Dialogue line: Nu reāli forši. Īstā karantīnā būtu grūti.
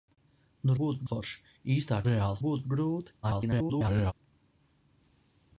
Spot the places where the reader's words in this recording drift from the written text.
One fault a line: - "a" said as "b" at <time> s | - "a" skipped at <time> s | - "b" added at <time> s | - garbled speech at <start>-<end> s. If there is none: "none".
- "reāli" said as "būtu" at 0.8 s
- "karantīnā" said as "reāli" at 2.1 s
- garbled speech at 3.2-4.1 s